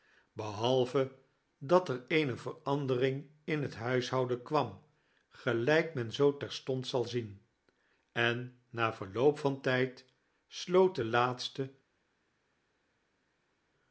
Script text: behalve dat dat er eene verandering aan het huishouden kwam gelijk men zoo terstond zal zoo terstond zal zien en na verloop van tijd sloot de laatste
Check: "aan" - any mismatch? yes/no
yes